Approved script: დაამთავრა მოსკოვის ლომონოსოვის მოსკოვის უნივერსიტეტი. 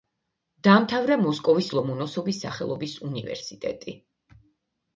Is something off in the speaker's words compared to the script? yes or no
yes